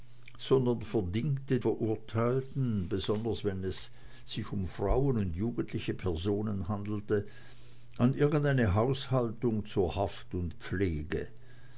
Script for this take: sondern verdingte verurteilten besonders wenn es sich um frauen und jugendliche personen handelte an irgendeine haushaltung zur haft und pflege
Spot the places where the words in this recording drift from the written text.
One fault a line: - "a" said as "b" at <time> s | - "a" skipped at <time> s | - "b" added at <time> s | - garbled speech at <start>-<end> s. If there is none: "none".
none